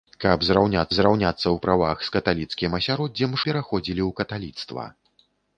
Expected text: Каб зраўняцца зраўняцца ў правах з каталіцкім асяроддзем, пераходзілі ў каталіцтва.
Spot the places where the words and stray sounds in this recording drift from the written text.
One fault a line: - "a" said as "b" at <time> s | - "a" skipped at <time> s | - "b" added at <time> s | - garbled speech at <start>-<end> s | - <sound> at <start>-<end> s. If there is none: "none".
none